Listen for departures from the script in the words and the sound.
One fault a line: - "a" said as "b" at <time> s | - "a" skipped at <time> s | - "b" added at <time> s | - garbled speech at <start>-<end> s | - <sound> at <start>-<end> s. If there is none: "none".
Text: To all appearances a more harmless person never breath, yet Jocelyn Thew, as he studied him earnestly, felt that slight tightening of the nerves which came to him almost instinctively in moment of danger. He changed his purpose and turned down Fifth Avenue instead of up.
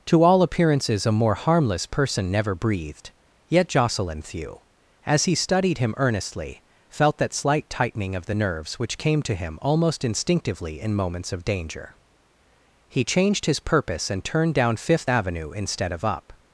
- "breath" said as "breathed" at 2.5 s
- "moment" said as "moments" at 10.9 s